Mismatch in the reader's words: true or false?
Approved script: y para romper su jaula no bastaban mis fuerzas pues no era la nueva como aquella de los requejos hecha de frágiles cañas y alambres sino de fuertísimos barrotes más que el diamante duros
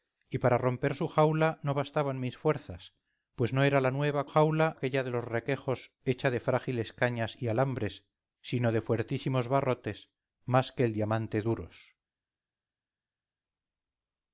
true